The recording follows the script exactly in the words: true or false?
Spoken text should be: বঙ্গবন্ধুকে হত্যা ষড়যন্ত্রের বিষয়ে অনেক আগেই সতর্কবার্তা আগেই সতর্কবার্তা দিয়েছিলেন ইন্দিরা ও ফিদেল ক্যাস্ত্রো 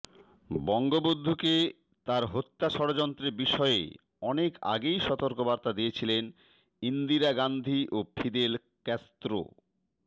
false